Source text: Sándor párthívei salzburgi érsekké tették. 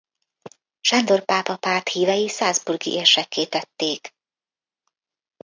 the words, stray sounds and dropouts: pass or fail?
fail